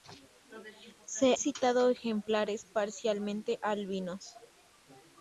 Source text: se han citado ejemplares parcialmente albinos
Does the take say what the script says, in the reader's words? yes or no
no